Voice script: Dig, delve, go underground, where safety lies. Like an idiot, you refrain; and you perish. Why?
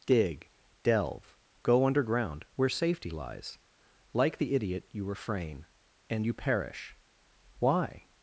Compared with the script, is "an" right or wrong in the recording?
wrong